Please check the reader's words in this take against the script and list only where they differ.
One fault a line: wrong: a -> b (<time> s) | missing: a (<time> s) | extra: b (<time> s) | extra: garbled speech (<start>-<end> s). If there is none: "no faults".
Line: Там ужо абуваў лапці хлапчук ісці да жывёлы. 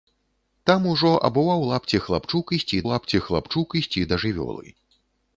extra: лапці хлапчук ісці (2.9 s)